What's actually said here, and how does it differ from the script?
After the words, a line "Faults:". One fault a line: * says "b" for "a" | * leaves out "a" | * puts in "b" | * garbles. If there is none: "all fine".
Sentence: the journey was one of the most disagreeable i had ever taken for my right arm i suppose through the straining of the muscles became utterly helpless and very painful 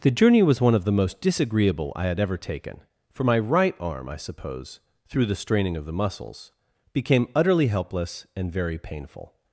the journey was one of the most disagreeable i had ever taken for my right arm i suppose through the straining of the muscles became utterly helpless and very painful
Faults:
all fine